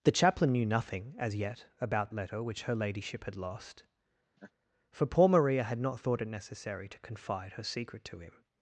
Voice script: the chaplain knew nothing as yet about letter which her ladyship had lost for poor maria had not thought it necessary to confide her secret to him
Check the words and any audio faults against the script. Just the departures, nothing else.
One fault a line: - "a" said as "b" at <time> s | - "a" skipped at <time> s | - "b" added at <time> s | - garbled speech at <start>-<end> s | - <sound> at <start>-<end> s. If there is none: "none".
- laugh at 4.4-4.5 s